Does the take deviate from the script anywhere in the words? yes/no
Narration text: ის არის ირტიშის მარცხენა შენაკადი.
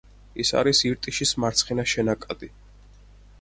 no